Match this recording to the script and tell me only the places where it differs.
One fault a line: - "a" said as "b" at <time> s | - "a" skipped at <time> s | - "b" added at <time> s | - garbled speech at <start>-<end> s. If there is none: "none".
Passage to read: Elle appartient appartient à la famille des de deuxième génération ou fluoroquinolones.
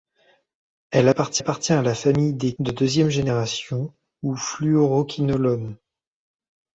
none